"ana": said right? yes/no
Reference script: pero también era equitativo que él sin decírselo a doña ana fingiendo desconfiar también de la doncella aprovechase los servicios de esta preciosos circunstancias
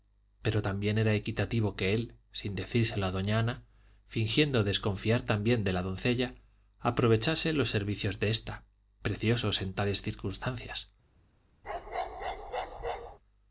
yes